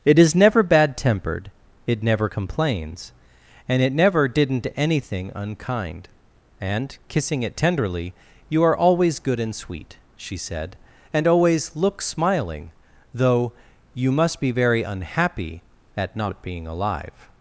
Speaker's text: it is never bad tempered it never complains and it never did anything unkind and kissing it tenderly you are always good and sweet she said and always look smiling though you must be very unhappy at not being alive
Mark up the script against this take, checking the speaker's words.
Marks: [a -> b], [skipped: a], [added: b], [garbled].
it is never bad tempered it never complains and it never [did -> didn't] anything unkind and kissing it tenderly you are always good and sweet she said and always look smiling though you must be very unhappy at not being alive